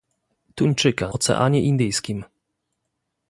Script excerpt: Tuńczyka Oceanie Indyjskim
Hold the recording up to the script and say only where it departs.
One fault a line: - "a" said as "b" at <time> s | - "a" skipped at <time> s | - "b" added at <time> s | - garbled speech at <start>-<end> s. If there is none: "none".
none